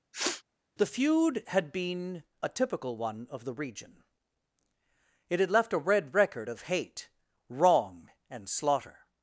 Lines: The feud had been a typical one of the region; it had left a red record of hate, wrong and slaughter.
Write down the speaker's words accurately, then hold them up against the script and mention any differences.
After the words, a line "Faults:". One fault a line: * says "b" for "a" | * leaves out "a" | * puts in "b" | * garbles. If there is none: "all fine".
The feud had been a typical one of the region; it had left a red record of hate, wrong and slaughter.
Faults:
all fine